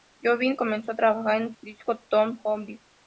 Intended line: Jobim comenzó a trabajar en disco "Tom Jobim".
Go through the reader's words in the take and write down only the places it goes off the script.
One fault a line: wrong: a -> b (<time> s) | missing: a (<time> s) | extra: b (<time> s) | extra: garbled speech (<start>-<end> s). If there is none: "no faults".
no faults